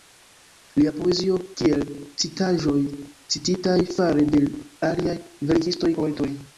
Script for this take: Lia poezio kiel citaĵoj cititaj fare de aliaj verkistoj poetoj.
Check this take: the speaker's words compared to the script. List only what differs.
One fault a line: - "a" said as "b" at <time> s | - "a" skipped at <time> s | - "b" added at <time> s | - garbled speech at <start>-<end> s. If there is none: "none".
none